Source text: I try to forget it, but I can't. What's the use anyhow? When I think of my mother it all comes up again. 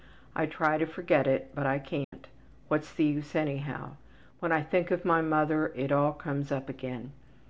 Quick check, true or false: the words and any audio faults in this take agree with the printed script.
false